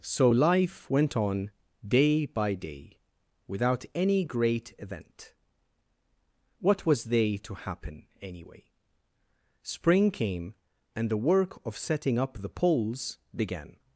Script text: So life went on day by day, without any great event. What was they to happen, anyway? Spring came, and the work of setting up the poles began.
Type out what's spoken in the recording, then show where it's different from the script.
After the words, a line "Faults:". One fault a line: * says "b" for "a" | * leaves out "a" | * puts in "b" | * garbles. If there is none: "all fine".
So life went on day by day, without any great event. What was they to happen, anyway? Spring came, and the work of setting up the poles began.
Faults:
all fine